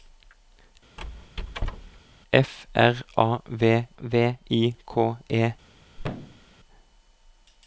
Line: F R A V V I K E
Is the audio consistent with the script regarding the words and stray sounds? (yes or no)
no